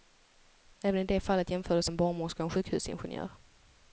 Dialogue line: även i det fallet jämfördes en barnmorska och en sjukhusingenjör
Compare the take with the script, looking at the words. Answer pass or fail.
pass